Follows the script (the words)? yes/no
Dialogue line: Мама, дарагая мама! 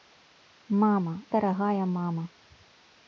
yes